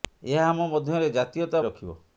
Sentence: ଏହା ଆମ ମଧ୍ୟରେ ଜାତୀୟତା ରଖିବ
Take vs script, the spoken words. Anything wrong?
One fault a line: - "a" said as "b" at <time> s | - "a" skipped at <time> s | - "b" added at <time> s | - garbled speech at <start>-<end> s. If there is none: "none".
none